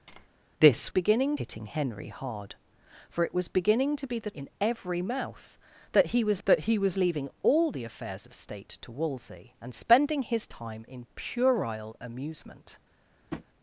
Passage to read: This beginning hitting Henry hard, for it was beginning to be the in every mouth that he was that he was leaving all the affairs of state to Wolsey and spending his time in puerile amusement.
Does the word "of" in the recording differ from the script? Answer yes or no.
no